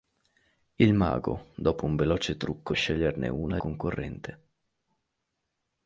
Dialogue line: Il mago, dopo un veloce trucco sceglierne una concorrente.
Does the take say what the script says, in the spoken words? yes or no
yes